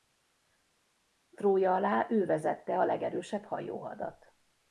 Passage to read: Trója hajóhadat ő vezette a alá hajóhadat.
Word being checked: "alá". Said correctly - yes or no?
no